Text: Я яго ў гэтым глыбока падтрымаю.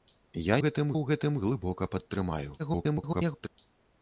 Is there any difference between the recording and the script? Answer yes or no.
yes